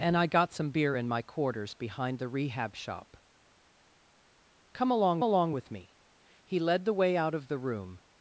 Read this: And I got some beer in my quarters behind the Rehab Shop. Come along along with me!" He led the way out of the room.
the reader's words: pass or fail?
pass